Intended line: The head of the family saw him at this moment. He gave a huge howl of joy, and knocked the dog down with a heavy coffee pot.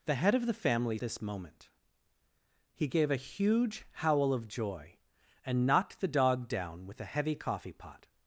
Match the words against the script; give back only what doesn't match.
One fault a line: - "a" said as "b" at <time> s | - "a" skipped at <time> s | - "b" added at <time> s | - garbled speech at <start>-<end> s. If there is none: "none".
- "saw him at" skipped at 1.0 s